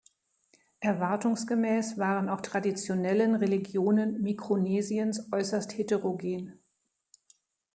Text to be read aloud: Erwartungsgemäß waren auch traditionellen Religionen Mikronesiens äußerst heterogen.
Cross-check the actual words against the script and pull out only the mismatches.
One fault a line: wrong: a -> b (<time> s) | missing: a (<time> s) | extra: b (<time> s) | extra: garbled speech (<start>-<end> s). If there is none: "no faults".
no faults